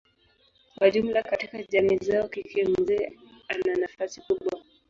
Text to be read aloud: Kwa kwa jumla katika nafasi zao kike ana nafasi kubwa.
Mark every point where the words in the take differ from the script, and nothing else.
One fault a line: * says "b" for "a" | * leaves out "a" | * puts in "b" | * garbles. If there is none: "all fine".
* leaves out "kwa"
* says "jamii" for "nafasi"
* puts in "mzee"